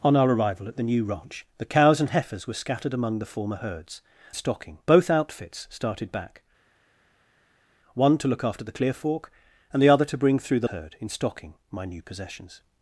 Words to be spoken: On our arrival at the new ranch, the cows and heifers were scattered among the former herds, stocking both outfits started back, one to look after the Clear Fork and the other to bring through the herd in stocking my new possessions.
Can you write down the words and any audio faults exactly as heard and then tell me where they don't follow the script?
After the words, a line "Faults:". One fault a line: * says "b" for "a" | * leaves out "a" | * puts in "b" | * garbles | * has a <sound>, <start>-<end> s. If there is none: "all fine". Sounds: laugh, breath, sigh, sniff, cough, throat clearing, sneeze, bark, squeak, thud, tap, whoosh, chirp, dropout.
On our arrival at the new ranch, the cows and heifers were scattered among the former herds, stocking both outfits started back, one to look after the Clear Fork and the other to bring through the herd in stocking my new possessions.
Faults:
all fine